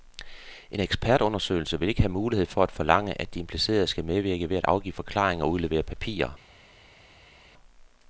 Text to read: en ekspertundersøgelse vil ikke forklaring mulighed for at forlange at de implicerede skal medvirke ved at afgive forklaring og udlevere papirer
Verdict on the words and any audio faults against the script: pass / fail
fail